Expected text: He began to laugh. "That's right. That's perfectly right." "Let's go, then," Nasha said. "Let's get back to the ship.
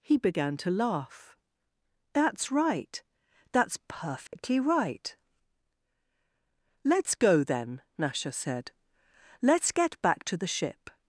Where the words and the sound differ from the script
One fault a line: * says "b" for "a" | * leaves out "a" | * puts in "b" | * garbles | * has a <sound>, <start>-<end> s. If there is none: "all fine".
* has a dropout, 4.3-4.3 s